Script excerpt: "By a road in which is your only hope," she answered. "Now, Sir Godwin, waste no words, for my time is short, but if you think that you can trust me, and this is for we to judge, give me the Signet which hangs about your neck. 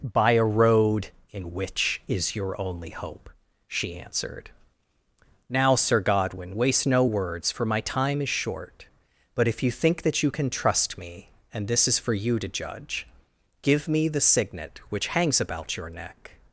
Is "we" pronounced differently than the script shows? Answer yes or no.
yes